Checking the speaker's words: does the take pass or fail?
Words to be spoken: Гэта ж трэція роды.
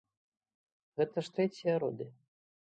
pass